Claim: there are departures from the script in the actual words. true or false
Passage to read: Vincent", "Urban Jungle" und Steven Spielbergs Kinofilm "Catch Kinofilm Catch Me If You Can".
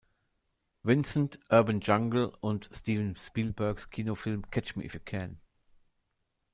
true